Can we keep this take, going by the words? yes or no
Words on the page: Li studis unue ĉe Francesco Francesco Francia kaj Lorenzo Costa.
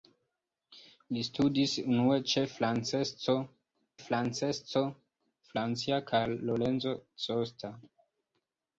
yes